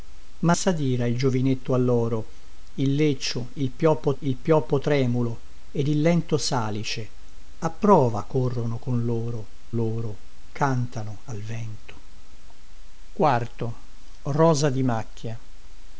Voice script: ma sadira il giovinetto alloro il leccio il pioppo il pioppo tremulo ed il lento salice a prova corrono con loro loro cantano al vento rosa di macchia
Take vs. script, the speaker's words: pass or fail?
pass